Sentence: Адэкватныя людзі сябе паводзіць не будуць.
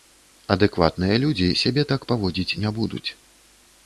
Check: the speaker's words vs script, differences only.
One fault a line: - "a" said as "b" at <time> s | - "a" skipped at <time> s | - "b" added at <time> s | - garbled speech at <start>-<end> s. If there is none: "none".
- "так" added at 1.9 s